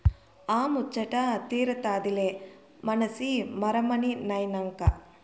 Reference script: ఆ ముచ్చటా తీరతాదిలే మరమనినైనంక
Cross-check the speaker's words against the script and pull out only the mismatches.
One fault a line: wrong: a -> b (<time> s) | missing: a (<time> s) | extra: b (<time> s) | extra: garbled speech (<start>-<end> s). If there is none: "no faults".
extra: మనసి (2.8 s)